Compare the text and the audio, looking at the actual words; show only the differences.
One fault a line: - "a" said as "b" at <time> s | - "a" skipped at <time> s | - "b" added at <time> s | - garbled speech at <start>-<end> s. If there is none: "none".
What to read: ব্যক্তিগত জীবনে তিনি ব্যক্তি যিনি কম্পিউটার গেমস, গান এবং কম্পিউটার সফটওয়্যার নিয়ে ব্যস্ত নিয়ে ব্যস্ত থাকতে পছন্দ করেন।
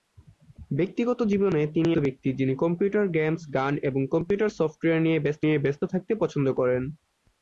none